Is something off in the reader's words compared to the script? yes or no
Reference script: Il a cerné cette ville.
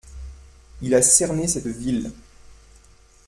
no